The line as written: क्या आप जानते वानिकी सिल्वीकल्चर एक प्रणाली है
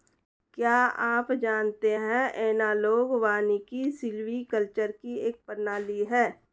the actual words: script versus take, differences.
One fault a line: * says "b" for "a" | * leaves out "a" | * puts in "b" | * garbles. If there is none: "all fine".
* puts in "है एनालॉग"
* puts in "की"